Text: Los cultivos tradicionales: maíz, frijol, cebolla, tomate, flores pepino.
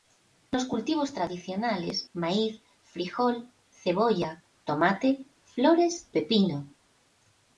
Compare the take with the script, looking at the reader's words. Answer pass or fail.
pass